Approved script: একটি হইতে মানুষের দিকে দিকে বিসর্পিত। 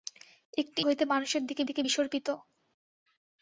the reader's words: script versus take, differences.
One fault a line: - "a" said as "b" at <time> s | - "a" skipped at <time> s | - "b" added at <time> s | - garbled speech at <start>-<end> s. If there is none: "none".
none